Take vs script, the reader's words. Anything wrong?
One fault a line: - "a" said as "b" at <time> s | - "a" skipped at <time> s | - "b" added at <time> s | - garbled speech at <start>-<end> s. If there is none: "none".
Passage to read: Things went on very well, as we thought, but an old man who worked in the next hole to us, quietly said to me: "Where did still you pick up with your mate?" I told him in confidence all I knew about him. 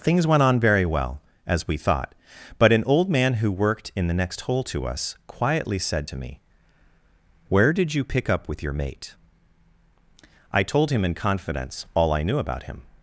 - "still" skipped at 7.9 s